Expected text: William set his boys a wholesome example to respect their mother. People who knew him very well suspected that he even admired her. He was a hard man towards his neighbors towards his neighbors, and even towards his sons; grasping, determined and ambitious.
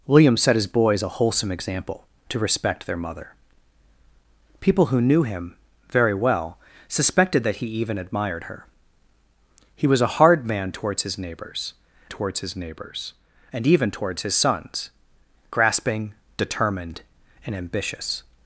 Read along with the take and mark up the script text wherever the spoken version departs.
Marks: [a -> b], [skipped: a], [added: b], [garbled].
William set his boys a wholesome example to respect their mother. People who knew him very well suspected that he even admired her. He was a hard man towards his neighbors towards his neighbors, and even towards his sons; grasping, determined and ambitious.